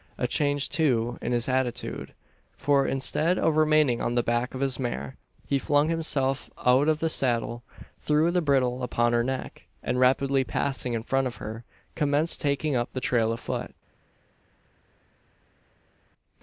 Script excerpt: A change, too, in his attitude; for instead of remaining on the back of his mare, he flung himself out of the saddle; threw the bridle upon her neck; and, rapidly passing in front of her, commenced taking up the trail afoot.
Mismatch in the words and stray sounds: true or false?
false